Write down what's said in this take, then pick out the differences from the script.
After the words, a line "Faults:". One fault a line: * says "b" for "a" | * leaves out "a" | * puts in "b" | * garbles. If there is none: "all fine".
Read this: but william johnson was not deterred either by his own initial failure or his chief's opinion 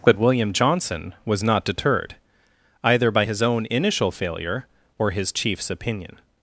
but william johnson was not deterred either by his own initial failure or his chief's opinion
Faults:
all fine